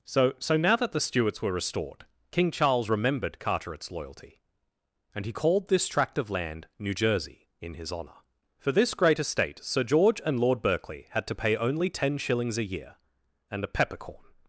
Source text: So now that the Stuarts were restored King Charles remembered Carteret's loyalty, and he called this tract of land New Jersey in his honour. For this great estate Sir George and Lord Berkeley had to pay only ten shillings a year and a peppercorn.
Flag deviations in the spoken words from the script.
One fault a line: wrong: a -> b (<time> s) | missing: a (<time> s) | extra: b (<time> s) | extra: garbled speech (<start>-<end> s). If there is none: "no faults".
extra: so (0.4 s)